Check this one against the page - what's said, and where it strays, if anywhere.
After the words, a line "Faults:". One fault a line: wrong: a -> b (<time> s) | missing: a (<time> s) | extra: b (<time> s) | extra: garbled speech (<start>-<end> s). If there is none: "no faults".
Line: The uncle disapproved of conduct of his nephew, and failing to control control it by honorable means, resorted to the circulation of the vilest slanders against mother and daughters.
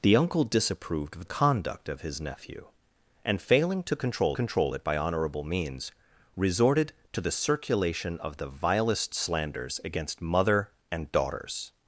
The uncle disapproved of conduct of his nephew, and failing to control control it by honorable means, resorted to the circulation of the vilest slanders against mother and daughters.
Faults:
no faults